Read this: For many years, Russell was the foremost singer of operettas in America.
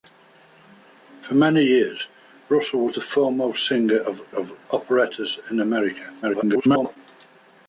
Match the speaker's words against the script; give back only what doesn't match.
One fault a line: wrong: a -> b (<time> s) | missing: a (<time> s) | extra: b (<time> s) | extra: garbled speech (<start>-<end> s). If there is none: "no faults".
extra: of (4.3 s)
extra: garbled speech (6.2-7.0 s)